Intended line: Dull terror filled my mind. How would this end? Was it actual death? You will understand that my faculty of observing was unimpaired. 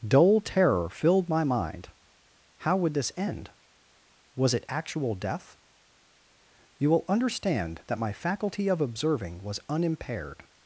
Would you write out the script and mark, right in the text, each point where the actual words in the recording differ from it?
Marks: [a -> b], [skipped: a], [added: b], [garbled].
Dull terror filled my mind. How would this end? Was it actual death? You will understand that my faculty of observing was unimpaired.